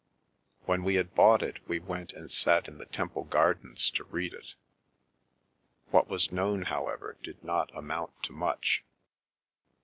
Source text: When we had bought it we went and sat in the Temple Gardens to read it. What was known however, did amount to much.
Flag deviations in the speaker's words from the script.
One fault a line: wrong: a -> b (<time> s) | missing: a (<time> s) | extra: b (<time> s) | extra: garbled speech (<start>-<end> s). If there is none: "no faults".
extra: not (7.4 s)